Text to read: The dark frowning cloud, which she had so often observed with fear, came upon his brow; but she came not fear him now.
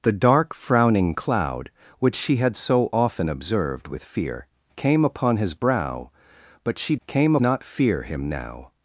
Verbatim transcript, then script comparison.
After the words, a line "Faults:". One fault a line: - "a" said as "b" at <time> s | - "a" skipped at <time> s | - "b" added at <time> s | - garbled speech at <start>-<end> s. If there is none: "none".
The dark frowning cloud, which she had so often observed with fear, came upon his brow; but she came not fear him now.
Faults:
none